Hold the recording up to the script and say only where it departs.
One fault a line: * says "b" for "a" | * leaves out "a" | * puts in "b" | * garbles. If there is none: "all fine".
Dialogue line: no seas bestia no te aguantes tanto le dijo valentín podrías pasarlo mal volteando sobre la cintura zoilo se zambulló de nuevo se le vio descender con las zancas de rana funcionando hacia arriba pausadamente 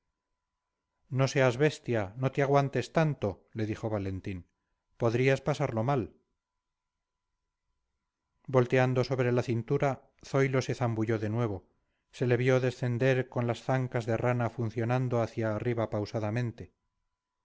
all fine